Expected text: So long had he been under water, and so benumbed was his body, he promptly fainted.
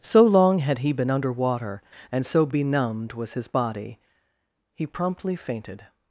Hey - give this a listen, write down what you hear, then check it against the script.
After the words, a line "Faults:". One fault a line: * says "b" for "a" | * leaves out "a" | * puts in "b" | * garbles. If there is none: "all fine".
So long had he been under water, and so benumbed was his body, he promptly fainted.
Faults:
all fine